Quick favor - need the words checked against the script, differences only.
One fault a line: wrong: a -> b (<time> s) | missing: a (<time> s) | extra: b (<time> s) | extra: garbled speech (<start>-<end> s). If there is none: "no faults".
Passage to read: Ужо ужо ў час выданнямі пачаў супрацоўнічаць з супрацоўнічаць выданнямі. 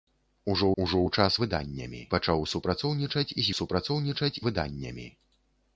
no faults